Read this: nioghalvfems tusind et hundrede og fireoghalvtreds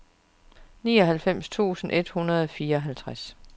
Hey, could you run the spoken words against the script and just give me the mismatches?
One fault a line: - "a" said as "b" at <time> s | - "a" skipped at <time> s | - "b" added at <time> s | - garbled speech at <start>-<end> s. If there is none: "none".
none